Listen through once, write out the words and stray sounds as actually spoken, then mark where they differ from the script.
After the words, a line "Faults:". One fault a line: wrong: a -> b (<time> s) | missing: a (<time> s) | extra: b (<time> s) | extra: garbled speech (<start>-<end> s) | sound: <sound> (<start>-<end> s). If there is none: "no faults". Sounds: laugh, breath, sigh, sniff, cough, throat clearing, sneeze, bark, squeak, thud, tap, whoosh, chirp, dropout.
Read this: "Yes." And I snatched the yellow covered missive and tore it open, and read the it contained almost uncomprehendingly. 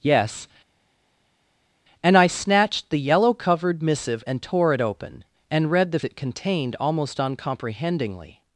"Yes." And I snatched the yellow covered missive and tore it open, and read the it contained almost uncomprehendingly.
Faults:
no faults